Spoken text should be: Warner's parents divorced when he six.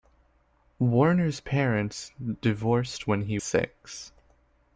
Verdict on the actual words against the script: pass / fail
pass